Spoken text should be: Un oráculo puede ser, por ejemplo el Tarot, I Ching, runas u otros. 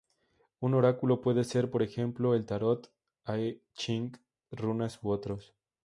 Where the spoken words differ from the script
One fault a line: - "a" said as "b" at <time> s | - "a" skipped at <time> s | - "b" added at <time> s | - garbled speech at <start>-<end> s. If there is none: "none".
none